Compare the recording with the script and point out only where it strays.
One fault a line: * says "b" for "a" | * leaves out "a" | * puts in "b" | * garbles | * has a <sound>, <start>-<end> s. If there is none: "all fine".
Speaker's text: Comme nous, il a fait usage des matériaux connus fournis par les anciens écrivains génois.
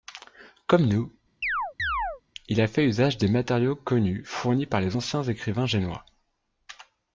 * has a chirp, 1.4-2.2 s